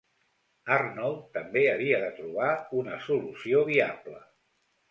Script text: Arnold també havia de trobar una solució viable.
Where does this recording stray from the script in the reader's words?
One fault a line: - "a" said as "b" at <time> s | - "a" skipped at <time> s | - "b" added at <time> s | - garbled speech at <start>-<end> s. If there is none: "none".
none